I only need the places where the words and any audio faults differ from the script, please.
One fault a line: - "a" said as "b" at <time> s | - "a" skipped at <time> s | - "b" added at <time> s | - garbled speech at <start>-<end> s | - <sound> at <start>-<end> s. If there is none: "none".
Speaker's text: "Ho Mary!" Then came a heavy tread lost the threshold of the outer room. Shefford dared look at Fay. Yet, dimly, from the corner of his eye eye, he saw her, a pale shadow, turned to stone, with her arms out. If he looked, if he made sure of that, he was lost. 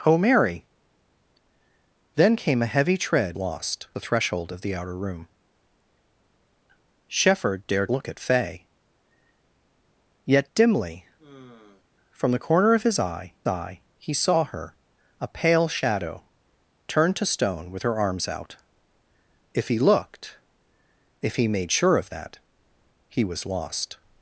- sigh at 11.2-11.8 s